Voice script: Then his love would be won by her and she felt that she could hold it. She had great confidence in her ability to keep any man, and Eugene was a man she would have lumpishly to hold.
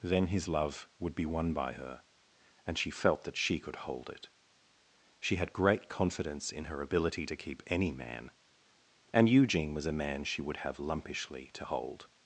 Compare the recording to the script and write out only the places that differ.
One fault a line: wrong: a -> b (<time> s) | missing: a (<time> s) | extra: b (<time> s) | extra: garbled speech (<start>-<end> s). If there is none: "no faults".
no faults